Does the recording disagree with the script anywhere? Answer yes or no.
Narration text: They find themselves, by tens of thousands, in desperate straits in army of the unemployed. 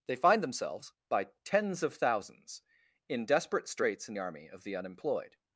no